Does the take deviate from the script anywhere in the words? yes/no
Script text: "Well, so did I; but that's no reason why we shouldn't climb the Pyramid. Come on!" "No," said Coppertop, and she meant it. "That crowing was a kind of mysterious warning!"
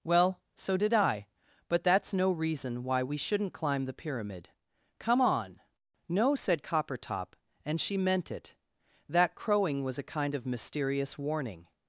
no